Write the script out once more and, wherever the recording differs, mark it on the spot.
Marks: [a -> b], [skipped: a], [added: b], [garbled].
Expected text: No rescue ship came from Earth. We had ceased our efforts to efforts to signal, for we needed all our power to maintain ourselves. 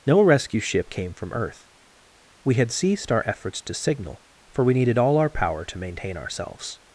No rescue ship came from Earth. We had ceased our efforts to [skipped: efforts to] signal, for we needed all our power to maintain ourselves.